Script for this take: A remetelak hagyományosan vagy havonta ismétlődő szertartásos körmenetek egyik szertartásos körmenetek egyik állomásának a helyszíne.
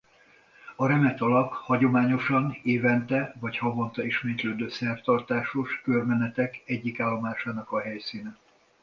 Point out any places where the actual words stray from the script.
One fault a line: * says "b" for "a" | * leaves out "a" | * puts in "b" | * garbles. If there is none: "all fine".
* puts in "évente"
* leaves out "szertartásos körmenetek egyik"